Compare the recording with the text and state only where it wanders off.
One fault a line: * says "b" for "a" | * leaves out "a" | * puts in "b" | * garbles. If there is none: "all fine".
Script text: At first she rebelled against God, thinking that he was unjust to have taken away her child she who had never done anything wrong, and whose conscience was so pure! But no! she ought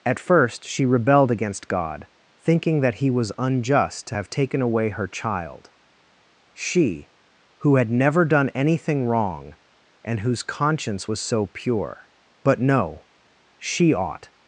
all fine